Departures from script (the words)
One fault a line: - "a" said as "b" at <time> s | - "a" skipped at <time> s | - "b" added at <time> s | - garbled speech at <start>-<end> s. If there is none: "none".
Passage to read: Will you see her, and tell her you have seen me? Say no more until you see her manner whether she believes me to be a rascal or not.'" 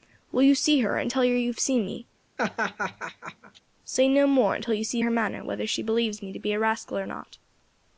none